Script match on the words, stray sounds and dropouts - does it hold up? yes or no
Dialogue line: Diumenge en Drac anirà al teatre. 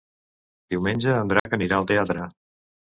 no